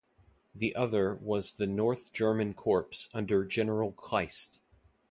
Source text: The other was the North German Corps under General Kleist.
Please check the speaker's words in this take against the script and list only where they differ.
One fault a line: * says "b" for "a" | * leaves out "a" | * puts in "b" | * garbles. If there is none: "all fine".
all fine